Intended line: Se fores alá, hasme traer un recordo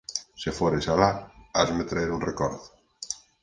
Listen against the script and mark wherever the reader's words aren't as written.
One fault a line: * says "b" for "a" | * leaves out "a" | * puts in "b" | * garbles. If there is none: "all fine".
all fine